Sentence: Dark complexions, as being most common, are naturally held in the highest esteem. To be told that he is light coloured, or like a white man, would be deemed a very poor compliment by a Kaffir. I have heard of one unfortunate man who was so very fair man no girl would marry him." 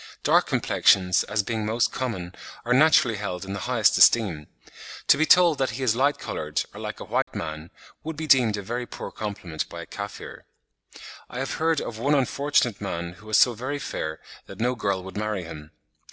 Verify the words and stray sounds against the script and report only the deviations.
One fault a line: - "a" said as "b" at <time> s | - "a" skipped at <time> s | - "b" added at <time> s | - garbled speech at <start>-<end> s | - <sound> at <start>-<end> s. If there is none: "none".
- dropout at 7.2-7.3 s
- "man" said as "that" at 14.5 s